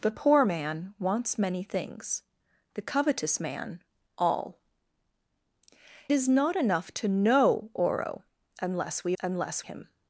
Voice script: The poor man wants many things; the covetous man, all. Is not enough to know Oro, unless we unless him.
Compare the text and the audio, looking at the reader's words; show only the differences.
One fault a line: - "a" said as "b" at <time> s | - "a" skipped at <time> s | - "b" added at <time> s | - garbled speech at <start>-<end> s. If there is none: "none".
none